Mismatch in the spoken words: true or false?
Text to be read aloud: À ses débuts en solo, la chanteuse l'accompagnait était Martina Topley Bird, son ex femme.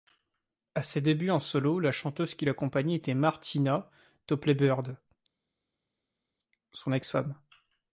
true